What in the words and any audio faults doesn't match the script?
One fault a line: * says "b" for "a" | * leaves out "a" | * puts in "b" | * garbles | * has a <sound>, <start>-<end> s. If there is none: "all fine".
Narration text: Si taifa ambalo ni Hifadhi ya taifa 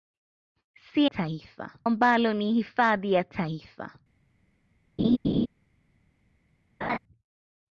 * has a laugh, 5.0-5.5 s
* has a laugh, 6.8-7.0 s